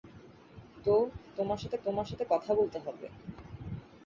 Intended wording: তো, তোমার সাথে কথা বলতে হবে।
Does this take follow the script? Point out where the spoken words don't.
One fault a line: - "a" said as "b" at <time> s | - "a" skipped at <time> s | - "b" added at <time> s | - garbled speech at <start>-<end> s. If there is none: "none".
- "তোমার সাথে" added at 1.8 s